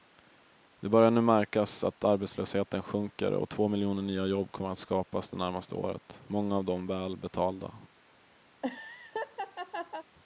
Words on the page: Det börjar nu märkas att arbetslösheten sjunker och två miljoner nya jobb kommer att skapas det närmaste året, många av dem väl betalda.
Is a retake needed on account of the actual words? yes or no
no